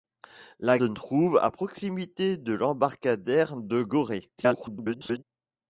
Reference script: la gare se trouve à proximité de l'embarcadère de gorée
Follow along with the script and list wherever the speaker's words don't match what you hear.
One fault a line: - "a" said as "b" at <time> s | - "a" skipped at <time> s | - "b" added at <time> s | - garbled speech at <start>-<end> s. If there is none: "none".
- "gare se" skipped at 0.8 s
- garbled speech at 4.4-5.2 s